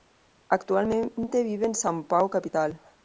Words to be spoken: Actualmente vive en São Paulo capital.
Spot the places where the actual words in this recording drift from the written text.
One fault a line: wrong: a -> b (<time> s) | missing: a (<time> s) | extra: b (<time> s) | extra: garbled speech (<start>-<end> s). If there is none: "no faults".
no faults